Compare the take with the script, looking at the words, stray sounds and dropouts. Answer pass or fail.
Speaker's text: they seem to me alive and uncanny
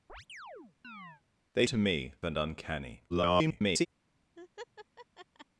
fail